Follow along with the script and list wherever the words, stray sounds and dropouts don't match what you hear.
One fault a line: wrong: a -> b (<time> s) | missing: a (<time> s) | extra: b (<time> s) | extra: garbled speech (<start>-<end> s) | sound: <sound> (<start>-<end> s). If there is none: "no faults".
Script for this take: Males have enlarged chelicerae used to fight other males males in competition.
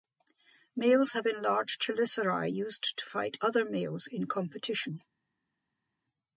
missing: males (4.1 s)